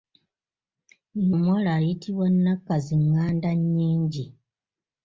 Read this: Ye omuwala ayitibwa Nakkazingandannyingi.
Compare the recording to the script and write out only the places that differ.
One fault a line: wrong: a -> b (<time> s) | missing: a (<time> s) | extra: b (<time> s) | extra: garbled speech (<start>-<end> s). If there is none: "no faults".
no faults